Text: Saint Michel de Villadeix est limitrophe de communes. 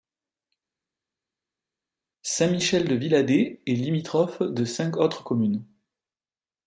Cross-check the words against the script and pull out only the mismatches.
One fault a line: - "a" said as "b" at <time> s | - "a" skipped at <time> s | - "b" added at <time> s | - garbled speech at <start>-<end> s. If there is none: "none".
- "cinq autres" added at 4.6 s